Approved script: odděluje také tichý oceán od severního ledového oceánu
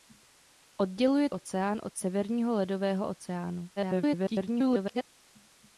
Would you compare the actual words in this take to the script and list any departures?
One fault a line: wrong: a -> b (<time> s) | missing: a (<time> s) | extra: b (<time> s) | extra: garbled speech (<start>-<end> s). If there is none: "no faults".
missing: také tichý (1.3 s)
extra: garbled speech (3.8-5.0 s)